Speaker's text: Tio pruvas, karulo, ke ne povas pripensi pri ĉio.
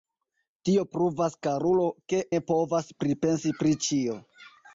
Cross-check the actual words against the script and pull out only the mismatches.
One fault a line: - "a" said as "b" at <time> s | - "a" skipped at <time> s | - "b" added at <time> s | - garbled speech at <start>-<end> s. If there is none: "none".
none